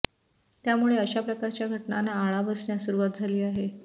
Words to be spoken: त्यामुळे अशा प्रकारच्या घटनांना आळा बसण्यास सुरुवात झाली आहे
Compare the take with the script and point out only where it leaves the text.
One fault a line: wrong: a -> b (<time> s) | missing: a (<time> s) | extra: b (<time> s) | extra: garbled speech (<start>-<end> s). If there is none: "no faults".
no faults